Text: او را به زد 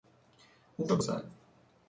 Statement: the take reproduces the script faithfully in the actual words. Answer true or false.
true